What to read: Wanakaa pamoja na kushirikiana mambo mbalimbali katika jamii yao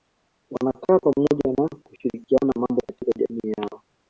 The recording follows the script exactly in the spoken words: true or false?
false